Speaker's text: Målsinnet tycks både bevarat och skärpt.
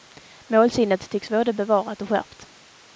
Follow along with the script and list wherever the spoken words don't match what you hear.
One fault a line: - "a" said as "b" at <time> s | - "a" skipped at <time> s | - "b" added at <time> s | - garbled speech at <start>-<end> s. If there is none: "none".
none